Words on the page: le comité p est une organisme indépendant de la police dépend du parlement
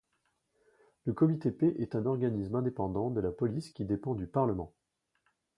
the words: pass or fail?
fail